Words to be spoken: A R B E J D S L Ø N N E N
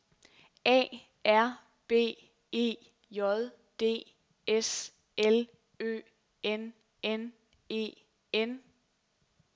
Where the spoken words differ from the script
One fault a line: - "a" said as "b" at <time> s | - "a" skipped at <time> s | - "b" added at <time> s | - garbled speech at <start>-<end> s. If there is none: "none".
none